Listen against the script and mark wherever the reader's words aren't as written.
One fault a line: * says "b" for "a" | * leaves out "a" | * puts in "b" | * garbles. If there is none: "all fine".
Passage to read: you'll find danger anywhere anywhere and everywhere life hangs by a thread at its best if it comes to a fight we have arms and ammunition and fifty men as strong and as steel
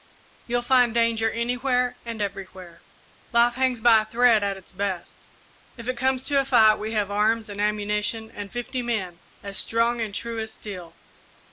* leaves out "anywhere"
* puts in "true"